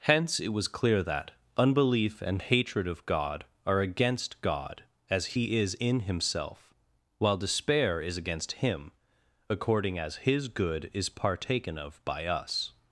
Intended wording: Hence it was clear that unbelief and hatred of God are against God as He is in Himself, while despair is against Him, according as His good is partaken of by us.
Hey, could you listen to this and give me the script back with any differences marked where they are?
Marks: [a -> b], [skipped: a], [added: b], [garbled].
Hence it was clear that unbelief and hatred of God are against God as He is in Himself, while despair is against Him, according as His good is partaken of by us.